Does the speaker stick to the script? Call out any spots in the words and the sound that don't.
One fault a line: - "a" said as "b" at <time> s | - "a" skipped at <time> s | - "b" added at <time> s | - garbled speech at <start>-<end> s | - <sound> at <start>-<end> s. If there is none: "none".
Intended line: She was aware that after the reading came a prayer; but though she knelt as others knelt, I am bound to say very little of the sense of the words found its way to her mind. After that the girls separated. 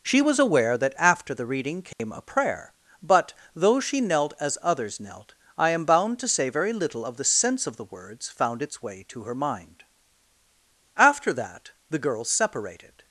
- dropout at 1.9-2.0 s